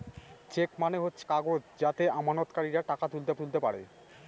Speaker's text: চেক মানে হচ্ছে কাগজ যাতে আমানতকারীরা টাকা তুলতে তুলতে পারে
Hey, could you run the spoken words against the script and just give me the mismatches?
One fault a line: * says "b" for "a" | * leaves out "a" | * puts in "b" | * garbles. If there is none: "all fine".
all fine